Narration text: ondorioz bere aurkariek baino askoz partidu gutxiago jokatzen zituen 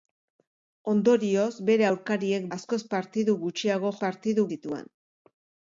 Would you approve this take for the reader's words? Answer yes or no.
no